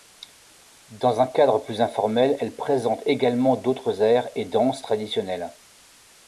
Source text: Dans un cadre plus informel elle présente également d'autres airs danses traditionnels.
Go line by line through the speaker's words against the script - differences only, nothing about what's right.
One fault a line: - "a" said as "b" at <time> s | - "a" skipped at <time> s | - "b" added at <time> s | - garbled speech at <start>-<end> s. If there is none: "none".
- "et" added at 4.3 s